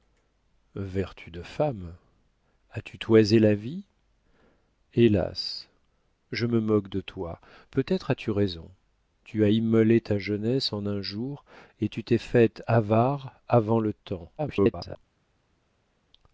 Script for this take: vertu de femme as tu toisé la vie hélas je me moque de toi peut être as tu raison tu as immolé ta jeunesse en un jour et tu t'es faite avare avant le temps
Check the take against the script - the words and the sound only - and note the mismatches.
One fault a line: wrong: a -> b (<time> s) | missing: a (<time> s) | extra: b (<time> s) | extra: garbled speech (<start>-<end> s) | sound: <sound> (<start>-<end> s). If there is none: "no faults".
extra: garbled speech (14.4-15.0 s)